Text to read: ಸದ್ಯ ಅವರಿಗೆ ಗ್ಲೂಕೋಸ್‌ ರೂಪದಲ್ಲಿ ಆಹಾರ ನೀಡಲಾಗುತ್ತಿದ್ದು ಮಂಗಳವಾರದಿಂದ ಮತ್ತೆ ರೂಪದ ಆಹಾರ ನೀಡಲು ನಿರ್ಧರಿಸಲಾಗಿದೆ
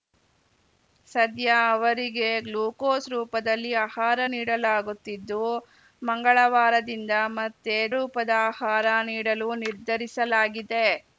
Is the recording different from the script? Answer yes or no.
no